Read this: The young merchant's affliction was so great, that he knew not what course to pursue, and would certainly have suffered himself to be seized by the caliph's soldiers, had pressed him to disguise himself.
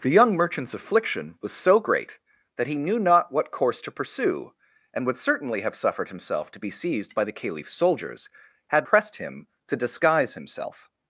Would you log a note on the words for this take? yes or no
no